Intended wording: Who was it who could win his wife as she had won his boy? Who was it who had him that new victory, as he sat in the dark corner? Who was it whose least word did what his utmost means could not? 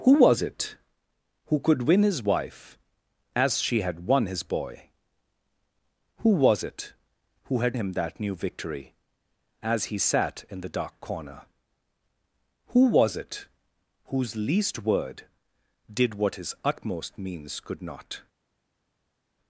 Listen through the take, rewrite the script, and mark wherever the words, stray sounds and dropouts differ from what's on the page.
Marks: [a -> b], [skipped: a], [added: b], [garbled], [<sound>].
Who was it who could win his wife as she had won his boy? Who was it who had him that new victory, as he sat in the dark corner? Who was it whose least word did what his utmost means could not?